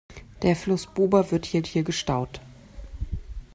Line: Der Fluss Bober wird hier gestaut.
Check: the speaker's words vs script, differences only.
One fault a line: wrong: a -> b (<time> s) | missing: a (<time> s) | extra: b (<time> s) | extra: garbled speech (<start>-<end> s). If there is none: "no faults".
extra: hier (1.7 s)